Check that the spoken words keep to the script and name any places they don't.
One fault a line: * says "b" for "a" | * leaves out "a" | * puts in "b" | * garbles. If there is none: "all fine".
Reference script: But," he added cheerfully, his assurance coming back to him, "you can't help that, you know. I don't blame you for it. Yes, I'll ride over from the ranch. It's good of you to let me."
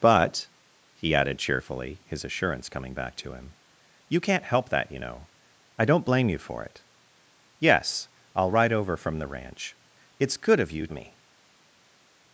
* leaves out "to let"